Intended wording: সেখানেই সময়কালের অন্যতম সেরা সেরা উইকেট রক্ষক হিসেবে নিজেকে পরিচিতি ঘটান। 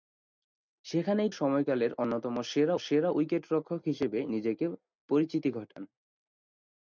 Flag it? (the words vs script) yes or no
no